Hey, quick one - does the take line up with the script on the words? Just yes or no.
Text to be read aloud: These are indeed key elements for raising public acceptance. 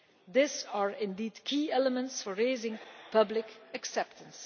yes